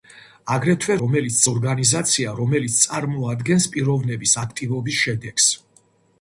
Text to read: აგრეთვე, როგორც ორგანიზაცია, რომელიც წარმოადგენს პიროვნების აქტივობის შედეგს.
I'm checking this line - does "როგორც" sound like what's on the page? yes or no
no